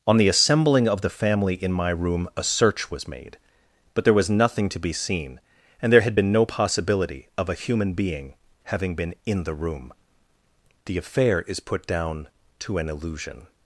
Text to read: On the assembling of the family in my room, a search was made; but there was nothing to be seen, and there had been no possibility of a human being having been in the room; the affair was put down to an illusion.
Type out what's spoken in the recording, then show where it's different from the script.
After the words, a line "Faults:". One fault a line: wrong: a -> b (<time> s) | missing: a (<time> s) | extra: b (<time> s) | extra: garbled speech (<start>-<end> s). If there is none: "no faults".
On the assembling of the family in my room, a search was made; but there was nothing to be seen, and there had been no possibility of a human being having been in the room; the affair is put down to an illusion.
Faults:
wrong: was -> is (11.4 s)